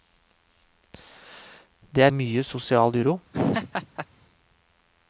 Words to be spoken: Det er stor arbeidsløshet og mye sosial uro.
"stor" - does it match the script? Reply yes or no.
no